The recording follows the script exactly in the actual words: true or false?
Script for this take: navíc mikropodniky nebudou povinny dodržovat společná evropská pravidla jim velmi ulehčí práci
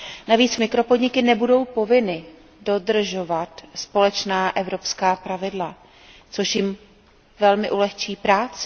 false